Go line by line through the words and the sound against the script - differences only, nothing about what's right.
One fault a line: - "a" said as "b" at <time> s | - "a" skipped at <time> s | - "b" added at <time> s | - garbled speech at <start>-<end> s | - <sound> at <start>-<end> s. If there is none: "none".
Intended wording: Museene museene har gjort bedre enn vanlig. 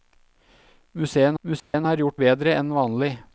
- dropout at 1.6-1.7 s